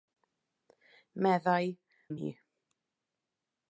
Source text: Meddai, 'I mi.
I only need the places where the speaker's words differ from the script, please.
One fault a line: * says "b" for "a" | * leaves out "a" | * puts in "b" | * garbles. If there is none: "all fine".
all fine